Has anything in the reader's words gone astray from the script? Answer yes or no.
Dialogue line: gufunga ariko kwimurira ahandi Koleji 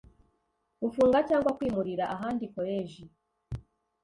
yes